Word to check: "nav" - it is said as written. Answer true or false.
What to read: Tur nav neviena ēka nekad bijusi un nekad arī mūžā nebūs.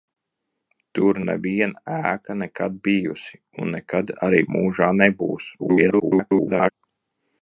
false